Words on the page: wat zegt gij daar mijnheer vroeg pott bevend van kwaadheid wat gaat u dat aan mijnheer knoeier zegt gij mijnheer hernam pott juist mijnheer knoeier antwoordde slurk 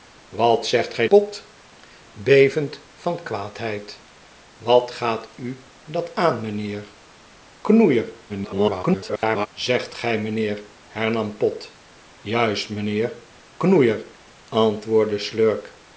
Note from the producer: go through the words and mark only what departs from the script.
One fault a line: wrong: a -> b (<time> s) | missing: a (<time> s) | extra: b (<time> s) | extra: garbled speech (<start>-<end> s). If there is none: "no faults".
missing: daar mijnheer vroeg (1.1 s)
extra: garbled speech (8.3-9.5 s)